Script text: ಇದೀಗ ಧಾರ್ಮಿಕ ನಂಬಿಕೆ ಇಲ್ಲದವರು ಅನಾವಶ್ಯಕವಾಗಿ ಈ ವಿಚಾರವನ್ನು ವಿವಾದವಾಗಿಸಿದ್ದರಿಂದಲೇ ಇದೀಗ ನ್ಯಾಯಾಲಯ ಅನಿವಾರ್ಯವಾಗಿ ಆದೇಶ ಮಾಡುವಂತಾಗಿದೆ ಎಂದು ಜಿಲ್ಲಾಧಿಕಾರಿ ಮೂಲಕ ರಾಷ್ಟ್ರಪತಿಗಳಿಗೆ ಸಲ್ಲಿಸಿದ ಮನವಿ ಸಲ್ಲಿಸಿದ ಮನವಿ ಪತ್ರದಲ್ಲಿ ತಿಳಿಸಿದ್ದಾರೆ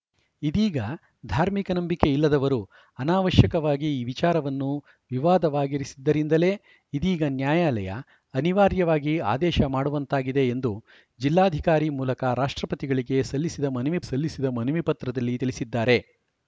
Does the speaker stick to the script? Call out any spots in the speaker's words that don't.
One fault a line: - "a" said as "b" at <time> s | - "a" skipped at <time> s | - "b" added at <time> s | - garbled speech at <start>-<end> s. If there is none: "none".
none